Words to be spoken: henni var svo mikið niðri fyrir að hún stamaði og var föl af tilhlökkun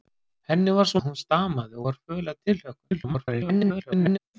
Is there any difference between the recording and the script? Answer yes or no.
yes